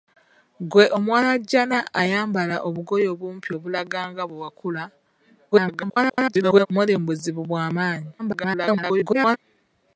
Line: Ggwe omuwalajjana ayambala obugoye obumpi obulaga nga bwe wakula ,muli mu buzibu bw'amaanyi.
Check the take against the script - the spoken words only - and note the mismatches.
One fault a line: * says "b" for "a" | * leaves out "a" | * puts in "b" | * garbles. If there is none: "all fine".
* garbles
* garbles